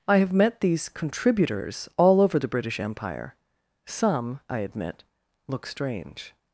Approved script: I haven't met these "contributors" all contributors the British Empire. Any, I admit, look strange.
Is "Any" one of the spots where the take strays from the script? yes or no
yes